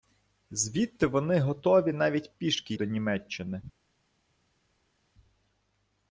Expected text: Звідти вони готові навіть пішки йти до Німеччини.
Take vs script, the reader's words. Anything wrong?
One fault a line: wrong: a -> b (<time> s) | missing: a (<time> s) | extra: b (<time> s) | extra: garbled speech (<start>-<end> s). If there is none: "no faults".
missing: йти (2.7 s)